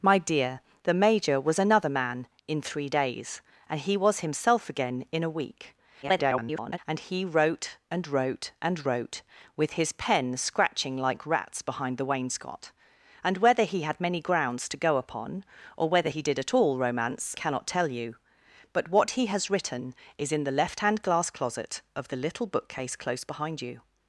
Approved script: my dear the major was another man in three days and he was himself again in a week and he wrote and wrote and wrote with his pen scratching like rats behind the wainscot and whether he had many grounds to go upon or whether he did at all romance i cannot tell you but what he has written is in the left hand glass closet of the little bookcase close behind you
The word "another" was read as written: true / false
true